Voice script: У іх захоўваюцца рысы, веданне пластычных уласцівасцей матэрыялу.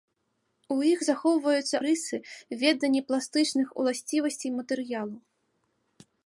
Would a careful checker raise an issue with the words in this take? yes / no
no